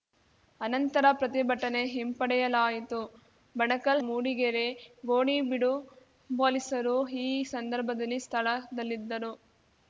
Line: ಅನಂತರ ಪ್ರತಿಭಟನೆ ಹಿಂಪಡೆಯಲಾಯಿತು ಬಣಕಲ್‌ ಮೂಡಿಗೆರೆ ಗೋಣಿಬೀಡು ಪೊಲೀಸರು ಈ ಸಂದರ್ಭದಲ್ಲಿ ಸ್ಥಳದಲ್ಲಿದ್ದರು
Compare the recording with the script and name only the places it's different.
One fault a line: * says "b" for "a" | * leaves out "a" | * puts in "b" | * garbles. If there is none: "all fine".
all fine